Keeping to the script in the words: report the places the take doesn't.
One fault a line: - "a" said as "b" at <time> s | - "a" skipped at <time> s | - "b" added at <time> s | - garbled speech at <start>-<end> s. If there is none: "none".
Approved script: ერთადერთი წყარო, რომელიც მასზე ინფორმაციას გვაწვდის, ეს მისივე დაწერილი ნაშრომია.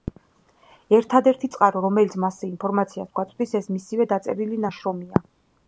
none